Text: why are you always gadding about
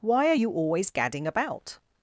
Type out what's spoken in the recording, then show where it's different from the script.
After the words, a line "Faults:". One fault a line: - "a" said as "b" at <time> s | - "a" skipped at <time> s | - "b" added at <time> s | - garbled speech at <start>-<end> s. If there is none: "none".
why are you always gadding about
Faults:
none